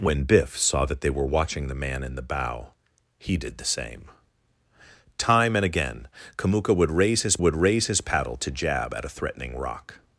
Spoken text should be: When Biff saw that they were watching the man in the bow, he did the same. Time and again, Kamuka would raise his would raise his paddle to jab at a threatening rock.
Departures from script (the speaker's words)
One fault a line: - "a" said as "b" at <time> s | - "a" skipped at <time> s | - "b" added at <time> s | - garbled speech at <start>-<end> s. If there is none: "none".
none